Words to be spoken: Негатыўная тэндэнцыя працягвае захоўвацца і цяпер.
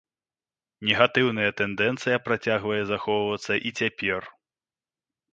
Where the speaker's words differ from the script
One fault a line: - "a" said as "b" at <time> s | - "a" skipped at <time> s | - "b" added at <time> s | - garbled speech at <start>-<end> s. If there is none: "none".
none